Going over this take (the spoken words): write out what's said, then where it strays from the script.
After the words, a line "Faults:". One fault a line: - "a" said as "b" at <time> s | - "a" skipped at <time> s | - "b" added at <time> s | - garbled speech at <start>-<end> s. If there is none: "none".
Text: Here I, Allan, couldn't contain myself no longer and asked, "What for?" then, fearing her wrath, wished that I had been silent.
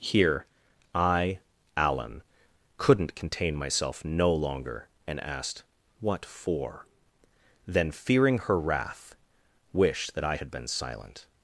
Here I, Allan, couldn't contain myself no longer and asked, "What for?" then, fearing her wrath, wished that I had been silent.
Faults:
none